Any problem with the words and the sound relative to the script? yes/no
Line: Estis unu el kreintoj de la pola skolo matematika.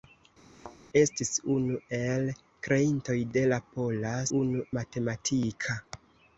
yes